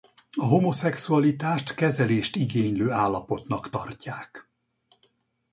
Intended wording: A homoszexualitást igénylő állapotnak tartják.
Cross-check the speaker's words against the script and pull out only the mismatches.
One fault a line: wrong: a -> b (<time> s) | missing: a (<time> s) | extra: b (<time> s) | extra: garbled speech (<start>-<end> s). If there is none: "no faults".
extra: kezelést (1.7 s)